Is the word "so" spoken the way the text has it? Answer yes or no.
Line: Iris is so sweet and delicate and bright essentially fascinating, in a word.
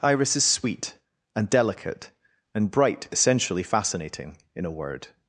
no